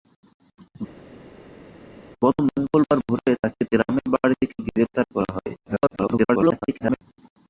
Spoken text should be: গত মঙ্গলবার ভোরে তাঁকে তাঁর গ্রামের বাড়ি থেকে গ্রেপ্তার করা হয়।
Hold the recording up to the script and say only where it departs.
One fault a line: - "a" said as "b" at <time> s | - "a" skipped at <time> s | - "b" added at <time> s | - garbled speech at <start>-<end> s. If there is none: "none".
- "তাঁর" skipped at 3.6 s
- garbled speech at 5.6-7.0 s